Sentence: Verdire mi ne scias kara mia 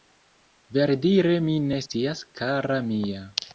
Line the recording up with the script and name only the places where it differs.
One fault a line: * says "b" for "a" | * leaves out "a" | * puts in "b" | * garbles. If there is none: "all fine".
all fine